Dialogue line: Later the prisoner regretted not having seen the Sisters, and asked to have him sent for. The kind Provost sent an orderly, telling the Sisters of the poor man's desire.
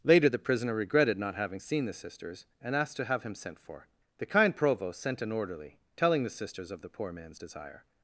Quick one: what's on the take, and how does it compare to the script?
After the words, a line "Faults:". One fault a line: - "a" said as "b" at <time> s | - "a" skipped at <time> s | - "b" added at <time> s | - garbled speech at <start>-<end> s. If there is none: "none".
Later the prisoner regretted not having seen the Sisters, and asked to have him sent for. The kind Provost sent an orderly, telling the Sisters of the poor man's desire.
Faults:
none